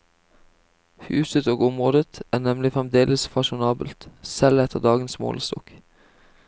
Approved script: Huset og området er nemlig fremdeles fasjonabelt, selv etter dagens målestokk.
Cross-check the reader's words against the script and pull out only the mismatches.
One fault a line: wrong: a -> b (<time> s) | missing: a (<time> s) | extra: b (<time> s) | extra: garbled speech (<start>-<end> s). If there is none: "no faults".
no faults